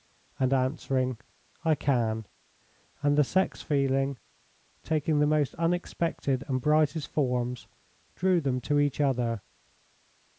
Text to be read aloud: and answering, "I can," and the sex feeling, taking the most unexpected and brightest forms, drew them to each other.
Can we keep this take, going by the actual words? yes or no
yes